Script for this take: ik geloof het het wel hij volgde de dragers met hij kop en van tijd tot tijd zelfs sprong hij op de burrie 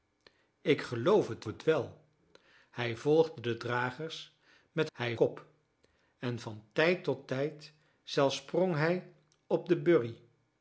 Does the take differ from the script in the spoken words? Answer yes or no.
no